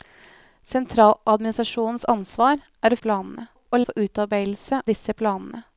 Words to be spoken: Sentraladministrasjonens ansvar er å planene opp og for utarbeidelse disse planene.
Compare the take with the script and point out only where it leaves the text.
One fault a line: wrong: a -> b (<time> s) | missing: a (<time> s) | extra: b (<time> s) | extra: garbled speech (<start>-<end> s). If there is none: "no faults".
no faults